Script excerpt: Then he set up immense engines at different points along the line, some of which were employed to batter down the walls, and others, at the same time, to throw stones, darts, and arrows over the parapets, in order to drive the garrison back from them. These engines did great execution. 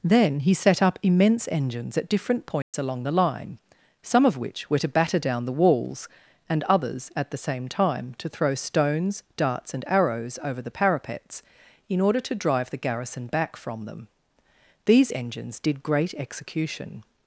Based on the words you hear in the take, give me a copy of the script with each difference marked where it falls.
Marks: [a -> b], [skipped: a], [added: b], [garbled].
Then he set up immense engines at different points along the line, some of which were [skipped: employed] to batter down the walls, and others, at the same time, to throw stones, darts, and arrows over the parapets, in order to drive the garrison back from them. These engines did great execution.